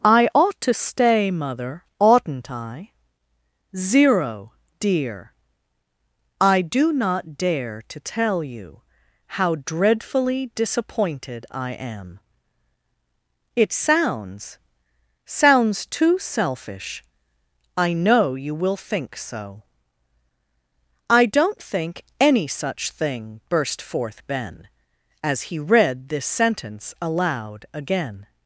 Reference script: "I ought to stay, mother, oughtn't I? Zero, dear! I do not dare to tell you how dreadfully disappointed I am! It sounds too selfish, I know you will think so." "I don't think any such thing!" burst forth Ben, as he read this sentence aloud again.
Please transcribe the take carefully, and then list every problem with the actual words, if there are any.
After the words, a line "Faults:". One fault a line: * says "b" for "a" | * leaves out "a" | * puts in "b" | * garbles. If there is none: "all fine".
"I ought to stay, mother, oughtn't I? Zero, dear! I do not dare to tell you how dreadfully disappointed I am! It sounds sounds too selfish, I know you will think so." "I don't think any such thing!" burst forth Ben, as he read this sentence aloud again.
Faults:
* puts in "sounds"